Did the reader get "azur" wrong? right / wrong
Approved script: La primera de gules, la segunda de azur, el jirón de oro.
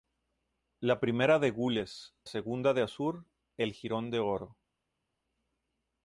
right